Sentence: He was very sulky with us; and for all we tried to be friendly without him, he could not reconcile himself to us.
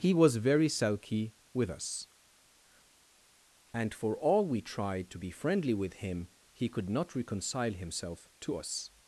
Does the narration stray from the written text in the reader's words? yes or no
yes